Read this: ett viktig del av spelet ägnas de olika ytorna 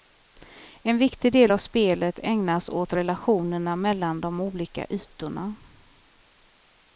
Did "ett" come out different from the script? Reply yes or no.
yes